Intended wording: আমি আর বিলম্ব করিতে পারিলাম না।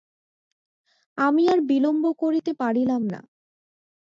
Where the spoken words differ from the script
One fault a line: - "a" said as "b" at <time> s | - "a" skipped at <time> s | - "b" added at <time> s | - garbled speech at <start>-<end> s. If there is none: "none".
none